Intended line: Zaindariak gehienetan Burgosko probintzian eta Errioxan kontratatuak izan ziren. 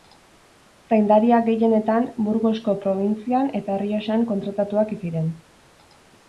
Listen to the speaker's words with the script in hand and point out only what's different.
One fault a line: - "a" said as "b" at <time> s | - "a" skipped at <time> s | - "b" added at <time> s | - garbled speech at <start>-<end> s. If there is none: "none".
- "izan" skipped at 5.0 s